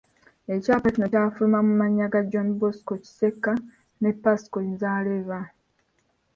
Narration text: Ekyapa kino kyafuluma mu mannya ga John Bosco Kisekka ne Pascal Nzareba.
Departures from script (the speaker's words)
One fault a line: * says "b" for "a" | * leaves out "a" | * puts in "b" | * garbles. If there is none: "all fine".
all fine